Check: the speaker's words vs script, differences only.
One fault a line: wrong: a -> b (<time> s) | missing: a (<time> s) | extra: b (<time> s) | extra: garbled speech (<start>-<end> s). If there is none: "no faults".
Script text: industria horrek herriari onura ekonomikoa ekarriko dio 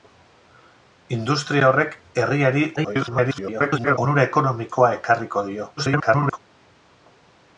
extra: garbled speech (2.8-4.0 s)
extra: garbled speech (5.8-6.4 s)